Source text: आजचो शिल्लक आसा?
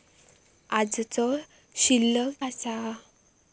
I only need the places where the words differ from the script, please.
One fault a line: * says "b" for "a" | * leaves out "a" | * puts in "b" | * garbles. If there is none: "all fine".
all fine